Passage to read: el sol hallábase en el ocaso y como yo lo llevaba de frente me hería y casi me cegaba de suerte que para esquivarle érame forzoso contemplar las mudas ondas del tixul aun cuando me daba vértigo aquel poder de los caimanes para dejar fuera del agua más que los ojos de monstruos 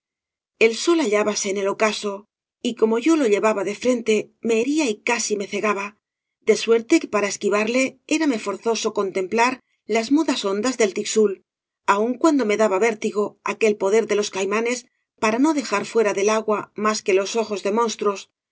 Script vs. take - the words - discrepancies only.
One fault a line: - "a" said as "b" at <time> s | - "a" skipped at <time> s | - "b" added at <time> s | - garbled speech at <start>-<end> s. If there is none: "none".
- "no" added at 15.4 s